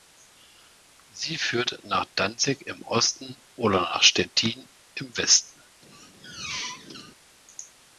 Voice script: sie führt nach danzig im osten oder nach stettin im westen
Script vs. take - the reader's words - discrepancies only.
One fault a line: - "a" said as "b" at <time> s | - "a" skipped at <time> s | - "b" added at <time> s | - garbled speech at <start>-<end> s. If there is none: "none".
none